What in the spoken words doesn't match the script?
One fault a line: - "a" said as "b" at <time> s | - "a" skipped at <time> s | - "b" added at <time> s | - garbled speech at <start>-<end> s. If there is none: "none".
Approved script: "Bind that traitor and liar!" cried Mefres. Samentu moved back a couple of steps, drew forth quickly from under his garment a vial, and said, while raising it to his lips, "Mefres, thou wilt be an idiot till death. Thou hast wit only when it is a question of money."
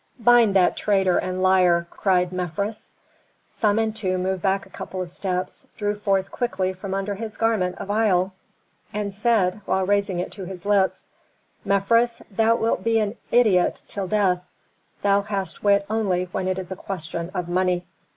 none